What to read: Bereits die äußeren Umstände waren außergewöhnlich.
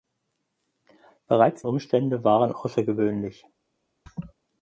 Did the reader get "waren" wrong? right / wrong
right